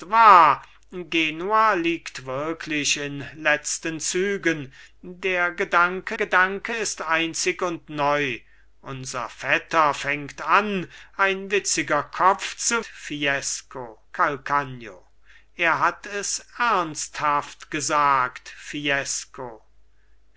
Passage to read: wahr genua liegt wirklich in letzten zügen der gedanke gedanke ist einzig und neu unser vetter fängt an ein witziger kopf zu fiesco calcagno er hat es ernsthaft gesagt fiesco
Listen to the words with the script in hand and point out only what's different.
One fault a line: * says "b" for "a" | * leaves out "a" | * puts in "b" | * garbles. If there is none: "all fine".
all fine